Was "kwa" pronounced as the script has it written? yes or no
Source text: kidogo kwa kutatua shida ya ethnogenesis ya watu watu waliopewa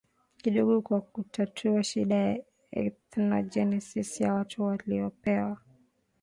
yes